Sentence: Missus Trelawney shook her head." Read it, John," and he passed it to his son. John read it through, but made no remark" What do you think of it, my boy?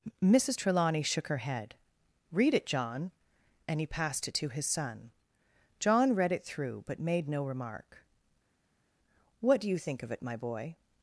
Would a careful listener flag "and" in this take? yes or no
no